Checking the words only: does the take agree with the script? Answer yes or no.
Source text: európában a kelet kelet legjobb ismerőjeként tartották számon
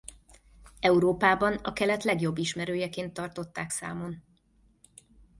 no